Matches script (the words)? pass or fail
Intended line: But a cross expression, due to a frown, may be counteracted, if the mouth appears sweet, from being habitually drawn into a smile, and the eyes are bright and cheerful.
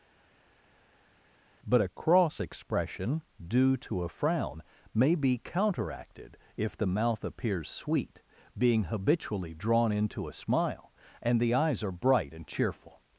fail